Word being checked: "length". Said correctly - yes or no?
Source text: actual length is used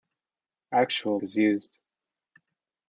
no